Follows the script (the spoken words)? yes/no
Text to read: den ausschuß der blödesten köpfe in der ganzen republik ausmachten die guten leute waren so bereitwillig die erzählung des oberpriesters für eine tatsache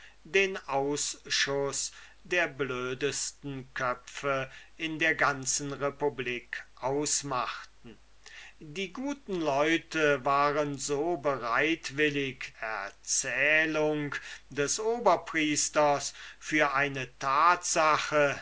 no